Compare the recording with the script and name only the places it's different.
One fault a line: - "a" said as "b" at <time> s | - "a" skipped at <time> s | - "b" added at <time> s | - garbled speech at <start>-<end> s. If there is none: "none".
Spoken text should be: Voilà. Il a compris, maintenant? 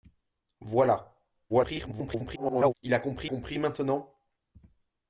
- garbled speech at 1.5-2.7 s
- "compris" added at 3.2 s